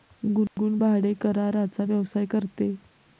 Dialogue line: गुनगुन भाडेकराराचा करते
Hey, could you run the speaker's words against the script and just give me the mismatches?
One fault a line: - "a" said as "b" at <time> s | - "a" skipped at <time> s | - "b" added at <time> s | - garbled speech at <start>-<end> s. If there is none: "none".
- "व्यवसाय" added at 1.8 s